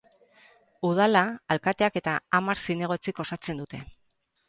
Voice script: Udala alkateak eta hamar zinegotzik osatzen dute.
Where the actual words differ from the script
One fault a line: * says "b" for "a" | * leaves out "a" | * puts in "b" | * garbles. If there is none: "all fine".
all fine